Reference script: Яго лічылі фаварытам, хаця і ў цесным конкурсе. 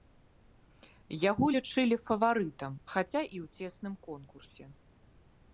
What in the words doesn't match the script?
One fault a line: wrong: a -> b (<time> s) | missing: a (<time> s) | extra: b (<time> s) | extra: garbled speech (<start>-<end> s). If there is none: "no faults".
no faults